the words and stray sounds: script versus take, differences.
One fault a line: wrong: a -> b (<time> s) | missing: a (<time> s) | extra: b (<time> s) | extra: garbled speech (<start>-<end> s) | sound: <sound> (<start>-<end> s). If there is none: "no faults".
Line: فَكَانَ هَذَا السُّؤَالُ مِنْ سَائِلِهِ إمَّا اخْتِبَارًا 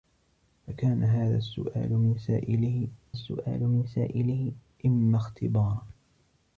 extra: السُّؤَالُ مِنْ سَائِلِهِ (3.1 s)